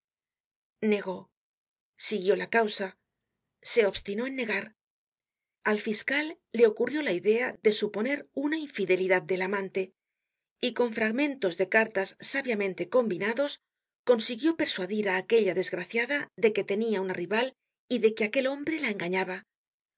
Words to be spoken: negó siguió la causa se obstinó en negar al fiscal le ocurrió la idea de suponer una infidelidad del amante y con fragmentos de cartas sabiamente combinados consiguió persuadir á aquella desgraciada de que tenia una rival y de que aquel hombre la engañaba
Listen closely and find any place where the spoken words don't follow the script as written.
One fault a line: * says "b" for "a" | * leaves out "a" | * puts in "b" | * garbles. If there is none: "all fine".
all fine